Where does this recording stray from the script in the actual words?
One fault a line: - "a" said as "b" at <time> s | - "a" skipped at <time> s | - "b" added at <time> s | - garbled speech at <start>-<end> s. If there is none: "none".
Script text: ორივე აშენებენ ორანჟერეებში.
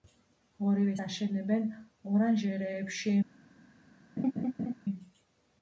none